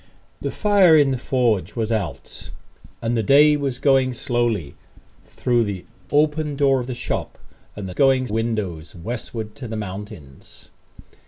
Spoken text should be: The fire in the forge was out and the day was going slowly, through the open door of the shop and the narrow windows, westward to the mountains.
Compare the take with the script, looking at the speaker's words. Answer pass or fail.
fail